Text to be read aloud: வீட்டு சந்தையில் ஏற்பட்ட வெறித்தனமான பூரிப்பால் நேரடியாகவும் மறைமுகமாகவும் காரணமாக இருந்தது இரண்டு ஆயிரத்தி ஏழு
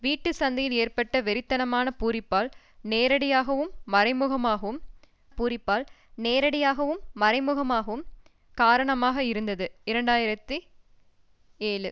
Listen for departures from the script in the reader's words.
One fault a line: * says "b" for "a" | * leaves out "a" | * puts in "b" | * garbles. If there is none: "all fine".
* puts in "பூரிப்பால் நேரடியாகவும் மறைமுகமாகவும்"